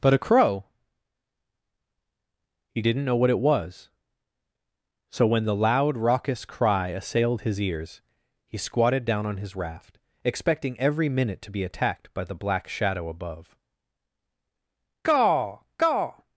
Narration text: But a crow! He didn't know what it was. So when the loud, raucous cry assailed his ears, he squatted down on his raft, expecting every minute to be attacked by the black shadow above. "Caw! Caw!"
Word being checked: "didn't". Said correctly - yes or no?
yes